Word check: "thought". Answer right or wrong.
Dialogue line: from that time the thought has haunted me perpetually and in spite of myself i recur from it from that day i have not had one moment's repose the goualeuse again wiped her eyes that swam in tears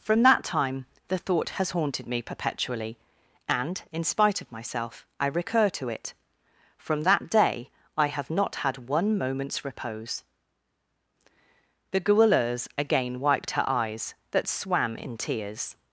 right